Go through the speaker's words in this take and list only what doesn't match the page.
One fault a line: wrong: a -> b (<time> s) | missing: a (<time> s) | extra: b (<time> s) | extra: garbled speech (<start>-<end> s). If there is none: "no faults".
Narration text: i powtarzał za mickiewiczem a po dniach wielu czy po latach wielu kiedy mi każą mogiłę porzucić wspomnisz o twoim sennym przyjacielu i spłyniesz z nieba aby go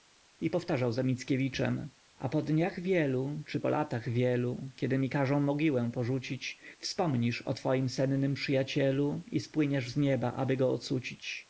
no faults